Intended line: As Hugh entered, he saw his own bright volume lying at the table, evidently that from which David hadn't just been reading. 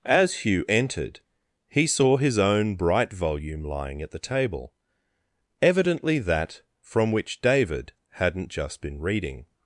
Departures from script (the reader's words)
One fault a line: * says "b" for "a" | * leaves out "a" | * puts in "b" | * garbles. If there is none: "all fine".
all fine